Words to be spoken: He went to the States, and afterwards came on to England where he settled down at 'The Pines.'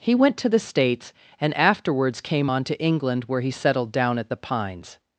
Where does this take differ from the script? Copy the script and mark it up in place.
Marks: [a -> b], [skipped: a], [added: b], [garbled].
He went to the States, and afterwards came on to England where he settled down at 'The Pines.'